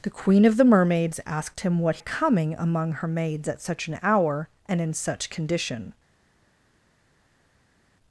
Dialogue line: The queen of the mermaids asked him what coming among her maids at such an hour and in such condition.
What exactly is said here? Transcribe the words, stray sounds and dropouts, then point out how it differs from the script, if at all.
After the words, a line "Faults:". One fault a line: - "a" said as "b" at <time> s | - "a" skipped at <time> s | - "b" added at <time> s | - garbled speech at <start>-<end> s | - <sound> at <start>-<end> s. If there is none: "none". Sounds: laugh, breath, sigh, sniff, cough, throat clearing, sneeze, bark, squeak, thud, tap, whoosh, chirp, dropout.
The queen of the mermaids asked him what coming among her maids at such an hour and in such condition.
Faults:
none